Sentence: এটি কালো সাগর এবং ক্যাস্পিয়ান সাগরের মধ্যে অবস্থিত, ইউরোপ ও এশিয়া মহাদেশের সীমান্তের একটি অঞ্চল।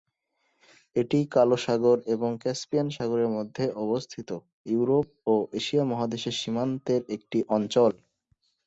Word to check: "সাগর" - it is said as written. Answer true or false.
true